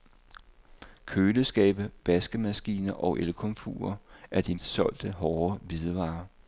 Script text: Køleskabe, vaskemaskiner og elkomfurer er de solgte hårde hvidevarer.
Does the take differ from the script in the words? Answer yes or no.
no